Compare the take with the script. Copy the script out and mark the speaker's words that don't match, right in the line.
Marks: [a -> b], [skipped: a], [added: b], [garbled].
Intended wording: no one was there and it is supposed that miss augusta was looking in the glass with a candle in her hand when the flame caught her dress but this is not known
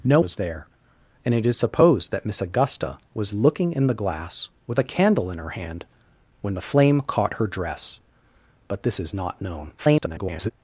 no [skipped: one] was there and it is supposed that miss augusta was looking in the glass with a candle in her hand when the flame caught her dress but this is not known [garbled]